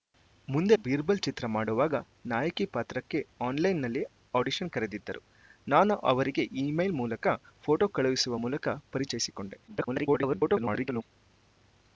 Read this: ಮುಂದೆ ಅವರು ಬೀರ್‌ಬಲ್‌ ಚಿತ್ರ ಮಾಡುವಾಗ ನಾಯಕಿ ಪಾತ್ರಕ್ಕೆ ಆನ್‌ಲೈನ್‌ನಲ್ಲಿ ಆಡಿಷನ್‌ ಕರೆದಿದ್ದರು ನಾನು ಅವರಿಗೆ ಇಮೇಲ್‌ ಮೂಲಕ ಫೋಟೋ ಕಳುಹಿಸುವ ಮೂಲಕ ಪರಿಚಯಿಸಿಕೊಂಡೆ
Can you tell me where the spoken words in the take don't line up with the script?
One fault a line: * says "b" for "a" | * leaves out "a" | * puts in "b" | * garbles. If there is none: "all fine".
* leaves out "ಅವರು"
* garbles